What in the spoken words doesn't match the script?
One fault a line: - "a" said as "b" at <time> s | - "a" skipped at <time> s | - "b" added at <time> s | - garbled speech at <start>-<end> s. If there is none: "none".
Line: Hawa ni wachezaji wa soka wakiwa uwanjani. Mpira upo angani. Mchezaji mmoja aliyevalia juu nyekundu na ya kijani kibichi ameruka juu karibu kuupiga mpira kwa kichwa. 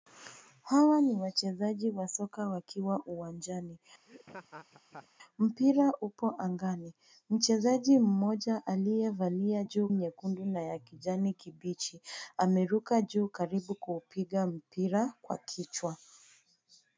none